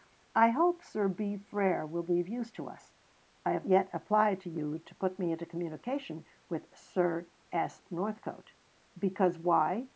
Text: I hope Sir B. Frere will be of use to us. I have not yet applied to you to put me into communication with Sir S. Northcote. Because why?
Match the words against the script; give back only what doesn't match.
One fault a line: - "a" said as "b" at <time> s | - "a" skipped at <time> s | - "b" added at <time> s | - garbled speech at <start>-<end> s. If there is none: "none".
- "not" skipped at 3.7 s